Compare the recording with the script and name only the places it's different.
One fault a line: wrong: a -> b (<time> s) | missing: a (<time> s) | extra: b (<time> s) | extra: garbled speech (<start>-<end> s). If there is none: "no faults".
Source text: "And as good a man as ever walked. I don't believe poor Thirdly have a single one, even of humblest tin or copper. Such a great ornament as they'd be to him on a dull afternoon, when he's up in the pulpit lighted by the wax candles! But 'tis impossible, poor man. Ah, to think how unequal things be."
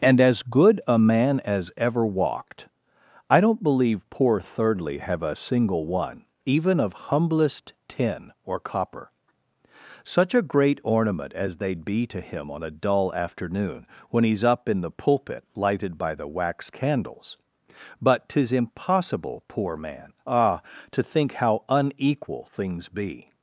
no faults